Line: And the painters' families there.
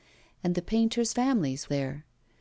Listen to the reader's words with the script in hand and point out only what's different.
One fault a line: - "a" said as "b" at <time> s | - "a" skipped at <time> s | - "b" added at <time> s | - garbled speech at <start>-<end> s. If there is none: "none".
none